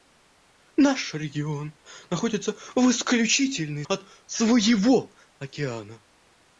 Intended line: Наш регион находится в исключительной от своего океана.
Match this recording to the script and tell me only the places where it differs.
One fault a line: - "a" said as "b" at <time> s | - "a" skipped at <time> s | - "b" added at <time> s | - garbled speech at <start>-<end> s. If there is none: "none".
none